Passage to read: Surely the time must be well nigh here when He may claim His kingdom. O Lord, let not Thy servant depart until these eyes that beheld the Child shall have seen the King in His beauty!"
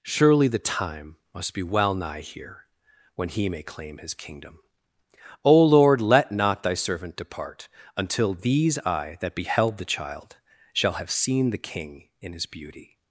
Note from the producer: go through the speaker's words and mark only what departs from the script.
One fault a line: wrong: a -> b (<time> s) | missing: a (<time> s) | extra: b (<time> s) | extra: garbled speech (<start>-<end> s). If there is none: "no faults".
wrong: eyes -> eye (8.8 s)